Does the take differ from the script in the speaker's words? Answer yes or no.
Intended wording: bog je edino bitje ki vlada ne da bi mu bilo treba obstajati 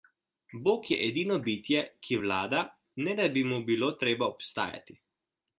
no